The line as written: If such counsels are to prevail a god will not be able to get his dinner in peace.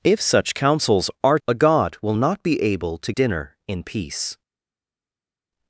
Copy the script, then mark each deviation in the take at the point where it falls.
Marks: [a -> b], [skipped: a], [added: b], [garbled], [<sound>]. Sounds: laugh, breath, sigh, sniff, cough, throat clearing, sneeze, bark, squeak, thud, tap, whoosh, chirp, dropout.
If such counsels are [skipped: to prevail] a god will not be able to [skipped: get his] dinner in peace.